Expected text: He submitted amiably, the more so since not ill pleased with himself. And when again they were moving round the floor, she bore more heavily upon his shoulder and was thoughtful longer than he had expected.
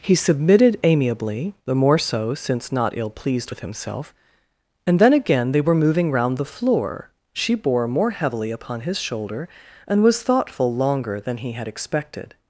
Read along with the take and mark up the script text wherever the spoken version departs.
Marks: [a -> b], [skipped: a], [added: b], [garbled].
He submitted amiably, the more so since not ill pleased with himself. And [when -> then] again they were moving round the floor, she bore more heavily upon his shoulder and was thoughtful longer than he had expected.